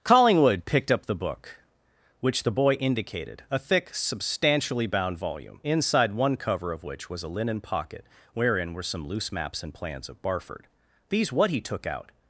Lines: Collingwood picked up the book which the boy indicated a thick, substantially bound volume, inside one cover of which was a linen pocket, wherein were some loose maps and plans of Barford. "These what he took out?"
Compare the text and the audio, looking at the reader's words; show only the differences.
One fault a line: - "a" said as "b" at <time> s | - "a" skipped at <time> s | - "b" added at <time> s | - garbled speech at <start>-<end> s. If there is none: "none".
none